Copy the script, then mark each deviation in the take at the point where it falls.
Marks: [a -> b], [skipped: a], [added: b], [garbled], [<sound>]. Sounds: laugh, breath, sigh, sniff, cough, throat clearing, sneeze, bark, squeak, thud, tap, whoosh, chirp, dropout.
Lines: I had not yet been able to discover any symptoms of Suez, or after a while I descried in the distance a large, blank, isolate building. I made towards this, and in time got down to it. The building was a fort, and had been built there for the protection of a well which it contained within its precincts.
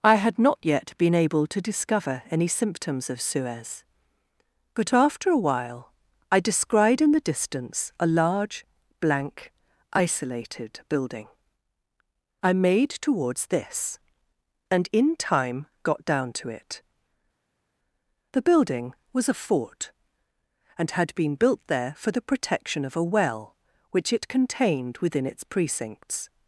I had not yet been able to discover any symptoms of Suez, [or -> but] after a while I descried in the distance a large, blank, [isolate -> isolated] building. I made towards this, and in time got down to it. The building was a fort, and had been built there for the protection of a well which it contained within its precincts.